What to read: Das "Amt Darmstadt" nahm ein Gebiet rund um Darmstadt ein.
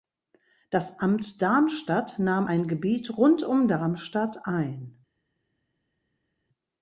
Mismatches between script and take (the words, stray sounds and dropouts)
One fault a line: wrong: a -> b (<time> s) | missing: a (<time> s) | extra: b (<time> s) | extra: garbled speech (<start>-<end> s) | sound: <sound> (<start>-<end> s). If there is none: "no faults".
no faults